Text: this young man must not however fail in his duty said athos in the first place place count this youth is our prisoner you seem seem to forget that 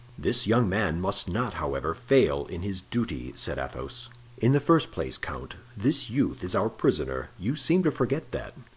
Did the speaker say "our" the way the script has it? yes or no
yes